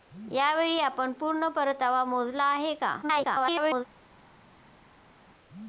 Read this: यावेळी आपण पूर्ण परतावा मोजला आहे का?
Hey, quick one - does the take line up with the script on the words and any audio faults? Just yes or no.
no